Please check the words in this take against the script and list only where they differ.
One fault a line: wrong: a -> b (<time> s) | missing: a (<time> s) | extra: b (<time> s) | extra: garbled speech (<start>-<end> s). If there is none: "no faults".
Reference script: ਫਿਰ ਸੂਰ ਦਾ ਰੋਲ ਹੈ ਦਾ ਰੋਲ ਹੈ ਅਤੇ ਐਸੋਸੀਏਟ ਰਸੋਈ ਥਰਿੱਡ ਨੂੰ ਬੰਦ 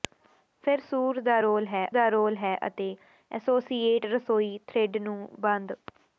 no faults